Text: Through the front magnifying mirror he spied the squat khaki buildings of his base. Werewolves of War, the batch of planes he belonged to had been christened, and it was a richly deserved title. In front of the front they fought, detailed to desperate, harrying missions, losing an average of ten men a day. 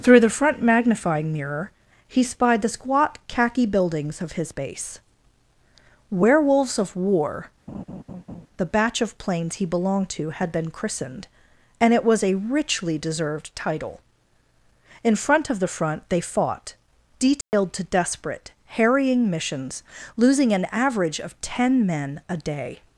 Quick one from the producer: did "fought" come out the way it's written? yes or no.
yes